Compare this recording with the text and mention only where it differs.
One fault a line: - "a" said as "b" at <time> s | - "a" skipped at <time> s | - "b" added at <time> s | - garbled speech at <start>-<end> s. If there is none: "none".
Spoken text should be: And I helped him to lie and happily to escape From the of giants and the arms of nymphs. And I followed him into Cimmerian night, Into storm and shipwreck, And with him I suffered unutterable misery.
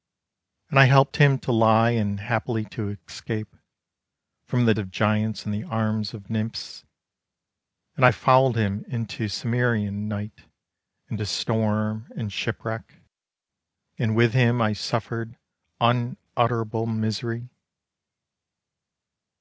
none